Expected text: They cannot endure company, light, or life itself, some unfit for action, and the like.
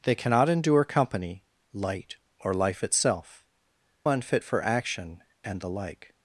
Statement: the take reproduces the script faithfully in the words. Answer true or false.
false